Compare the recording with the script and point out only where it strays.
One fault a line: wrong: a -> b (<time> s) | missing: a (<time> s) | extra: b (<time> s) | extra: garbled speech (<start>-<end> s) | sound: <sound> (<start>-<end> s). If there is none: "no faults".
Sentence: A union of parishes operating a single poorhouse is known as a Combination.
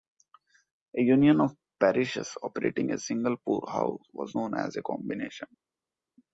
wrong: is -> was (4.1 s)